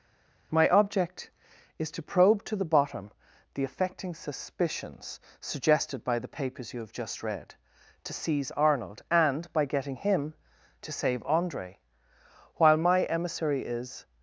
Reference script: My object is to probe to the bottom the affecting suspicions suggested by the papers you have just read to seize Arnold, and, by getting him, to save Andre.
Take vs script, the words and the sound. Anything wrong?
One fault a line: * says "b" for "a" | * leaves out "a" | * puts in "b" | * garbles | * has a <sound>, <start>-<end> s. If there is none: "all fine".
* puts in "While my emissary is"